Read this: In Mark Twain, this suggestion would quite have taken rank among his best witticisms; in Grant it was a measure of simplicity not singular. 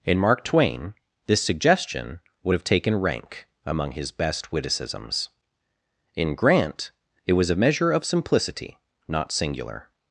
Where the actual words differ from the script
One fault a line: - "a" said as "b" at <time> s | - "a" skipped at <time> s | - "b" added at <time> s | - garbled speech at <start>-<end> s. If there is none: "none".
- "quite" skipped at 2.5 s